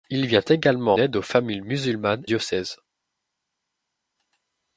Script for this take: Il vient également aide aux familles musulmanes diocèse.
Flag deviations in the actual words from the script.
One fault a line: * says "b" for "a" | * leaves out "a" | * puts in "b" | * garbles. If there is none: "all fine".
all fine